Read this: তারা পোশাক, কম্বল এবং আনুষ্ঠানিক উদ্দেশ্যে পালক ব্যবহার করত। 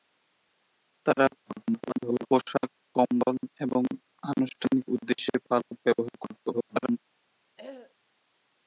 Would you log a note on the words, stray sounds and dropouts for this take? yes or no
yes